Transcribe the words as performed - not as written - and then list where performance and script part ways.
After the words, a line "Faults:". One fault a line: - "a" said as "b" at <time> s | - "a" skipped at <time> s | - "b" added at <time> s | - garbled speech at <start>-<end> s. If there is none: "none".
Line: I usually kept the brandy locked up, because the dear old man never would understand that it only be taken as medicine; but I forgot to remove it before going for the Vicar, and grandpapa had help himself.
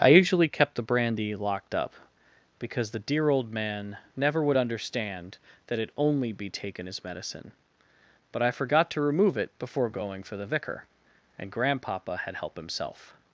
I usually kept the brandy locked up, because the dear old man never would understand that it only be taken as medicine; but I forgot to remove it before going for the Vicar, and grandpapa had help himself.
Faults:
none